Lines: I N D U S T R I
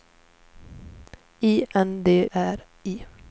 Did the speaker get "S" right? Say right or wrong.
wrong